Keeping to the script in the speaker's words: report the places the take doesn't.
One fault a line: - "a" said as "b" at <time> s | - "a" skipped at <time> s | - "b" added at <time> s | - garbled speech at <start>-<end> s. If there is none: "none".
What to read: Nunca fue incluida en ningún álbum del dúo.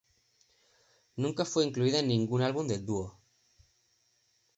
none